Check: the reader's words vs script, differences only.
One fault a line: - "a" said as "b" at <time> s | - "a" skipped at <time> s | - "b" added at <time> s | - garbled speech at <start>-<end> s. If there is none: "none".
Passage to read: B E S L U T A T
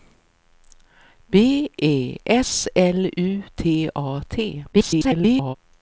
- garbled speech at 4.7-5.6 s